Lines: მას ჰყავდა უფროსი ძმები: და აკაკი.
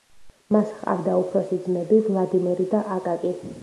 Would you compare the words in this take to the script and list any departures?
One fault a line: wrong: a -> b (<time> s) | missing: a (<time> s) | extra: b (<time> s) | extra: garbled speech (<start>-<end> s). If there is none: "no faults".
extra: ვლადიმერი (2.1 s)